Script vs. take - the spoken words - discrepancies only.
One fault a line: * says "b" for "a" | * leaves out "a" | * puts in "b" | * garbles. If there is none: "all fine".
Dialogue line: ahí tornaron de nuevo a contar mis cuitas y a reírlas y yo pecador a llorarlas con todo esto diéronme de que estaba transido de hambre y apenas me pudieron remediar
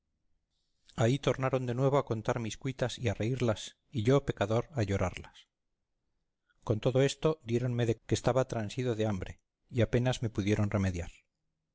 all fine